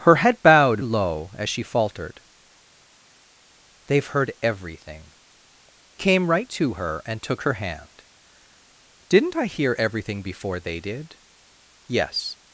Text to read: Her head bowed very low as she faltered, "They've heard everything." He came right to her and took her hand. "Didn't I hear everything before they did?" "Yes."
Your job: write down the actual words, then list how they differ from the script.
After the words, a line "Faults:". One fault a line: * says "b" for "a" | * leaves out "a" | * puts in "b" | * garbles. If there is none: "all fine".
Her head bowed low as she faltered, "They've heard everything." Came right to her and took her hand. "Didn't I hear everything before they did?" "Yes."
Faults:
* leaves out "very"
* leaves out "He"